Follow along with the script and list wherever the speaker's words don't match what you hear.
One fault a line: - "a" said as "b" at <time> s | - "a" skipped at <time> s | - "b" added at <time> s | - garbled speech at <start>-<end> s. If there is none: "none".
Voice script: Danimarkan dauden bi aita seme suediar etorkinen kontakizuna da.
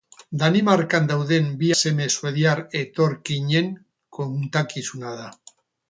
- "aita" skipped at 1.7 s